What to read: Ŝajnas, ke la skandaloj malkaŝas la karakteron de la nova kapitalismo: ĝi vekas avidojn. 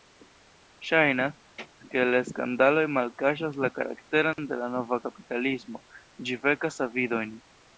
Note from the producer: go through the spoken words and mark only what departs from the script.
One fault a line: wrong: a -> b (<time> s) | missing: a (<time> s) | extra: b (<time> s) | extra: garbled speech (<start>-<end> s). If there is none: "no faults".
no faults